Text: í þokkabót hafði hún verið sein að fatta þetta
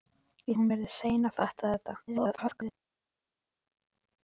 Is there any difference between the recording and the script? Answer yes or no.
yes